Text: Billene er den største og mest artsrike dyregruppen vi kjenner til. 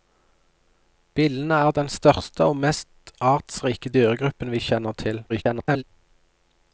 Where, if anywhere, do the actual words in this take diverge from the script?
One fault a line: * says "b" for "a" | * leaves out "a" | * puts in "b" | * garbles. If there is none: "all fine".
* garbles